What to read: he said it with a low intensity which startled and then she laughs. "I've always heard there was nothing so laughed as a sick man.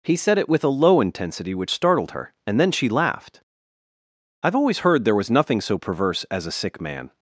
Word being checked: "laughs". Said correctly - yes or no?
no